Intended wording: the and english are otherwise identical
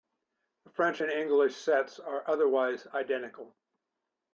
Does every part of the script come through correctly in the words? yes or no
no